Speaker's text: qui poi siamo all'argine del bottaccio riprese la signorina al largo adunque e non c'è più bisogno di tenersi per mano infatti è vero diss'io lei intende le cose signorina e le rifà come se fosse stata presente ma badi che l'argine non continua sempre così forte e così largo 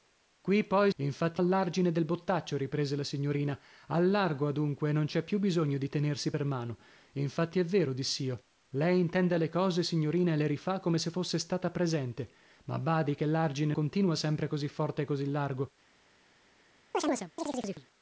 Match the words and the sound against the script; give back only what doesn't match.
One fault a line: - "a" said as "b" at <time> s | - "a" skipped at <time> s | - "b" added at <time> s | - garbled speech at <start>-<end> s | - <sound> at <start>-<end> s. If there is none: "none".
- "siamo" said as "infatti" at 1.0 s
- "non" skipped at 13.7 s
- chirp at 16.9-17.9 s